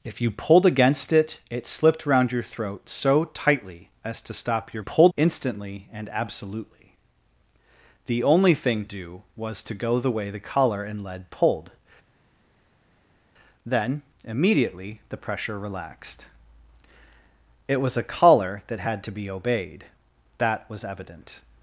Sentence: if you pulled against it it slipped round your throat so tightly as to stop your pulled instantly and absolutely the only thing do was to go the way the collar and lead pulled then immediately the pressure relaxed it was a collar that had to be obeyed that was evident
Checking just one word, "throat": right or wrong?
right